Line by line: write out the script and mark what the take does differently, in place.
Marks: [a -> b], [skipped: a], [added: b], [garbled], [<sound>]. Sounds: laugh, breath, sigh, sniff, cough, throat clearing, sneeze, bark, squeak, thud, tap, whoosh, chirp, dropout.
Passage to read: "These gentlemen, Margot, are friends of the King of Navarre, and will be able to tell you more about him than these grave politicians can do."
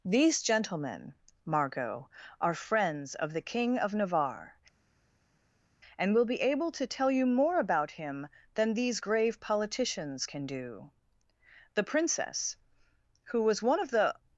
"These gentlemen, Margot, are friends of the King of Navarre, and will be able to tell you more about him than these grave politicians can do." [added: The princess who was one of the]